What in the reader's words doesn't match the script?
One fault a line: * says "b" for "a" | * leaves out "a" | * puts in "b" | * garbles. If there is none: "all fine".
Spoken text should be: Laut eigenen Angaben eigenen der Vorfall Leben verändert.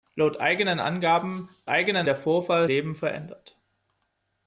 all fine